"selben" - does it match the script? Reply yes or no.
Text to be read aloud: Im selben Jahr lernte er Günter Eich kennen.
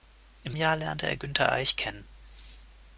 no